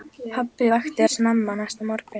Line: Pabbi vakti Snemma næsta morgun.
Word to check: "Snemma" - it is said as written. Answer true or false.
true